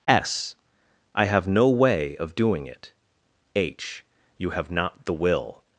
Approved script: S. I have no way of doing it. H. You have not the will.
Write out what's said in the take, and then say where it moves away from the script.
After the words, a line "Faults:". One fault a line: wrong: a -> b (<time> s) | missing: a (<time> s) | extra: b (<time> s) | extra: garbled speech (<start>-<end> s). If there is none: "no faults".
S. I have no way of doing it. H. You have not the will.
Faults:
no faults